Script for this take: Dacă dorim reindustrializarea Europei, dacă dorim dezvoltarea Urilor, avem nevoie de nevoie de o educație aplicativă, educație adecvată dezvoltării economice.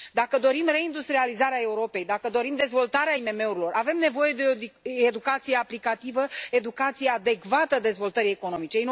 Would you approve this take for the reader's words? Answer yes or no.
no